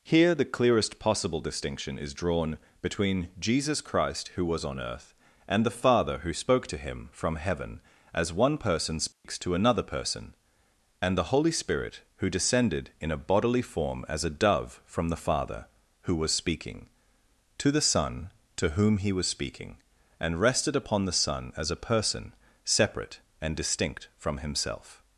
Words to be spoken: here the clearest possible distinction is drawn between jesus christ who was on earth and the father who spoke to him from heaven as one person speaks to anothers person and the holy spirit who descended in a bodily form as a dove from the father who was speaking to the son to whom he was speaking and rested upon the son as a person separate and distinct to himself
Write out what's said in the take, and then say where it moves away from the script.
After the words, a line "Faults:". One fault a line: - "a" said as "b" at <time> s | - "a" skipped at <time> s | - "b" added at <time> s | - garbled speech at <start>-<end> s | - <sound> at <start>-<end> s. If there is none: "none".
here the clearest possible distinction is drawn between jesus christ who was on earth and the father who spoke to him from heaven as one person speaks to another person and the holy spirit who descended in a bodily form as a dove from the father who was speaking to the son to whom he was speaking and rested upon the son as a person separate and distinct from himself
Faults:
- dropout at 9.1-9.2 s
- "anothers" said as "another" at 9.5 s
- "to" said as "from" at 24.2 s